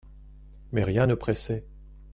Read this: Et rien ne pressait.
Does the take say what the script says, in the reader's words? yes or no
no